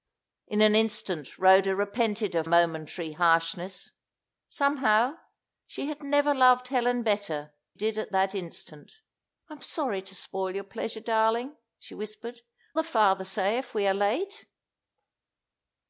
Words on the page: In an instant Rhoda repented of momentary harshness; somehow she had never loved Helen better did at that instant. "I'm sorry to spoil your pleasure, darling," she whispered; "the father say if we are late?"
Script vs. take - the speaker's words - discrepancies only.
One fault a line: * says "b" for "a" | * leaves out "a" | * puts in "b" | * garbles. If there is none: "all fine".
all fine